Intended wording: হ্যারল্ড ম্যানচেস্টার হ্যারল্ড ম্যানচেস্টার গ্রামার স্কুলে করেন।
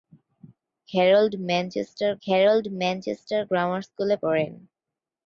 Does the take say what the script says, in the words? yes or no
yes